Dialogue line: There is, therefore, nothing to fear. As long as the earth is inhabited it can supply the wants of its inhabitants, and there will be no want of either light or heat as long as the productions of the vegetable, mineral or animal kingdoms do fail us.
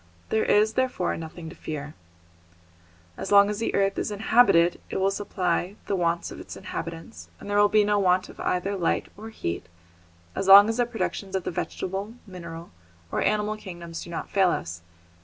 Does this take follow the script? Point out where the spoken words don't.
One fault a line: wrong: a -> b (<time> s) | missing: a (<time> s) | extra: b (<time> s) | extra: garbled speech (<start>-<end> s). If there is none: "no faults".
wrong: can -> will (5.0 s)
extra: not (14.1 s)